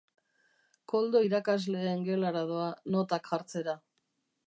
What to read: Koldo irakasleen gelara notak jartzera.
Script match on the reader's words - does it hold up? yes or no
no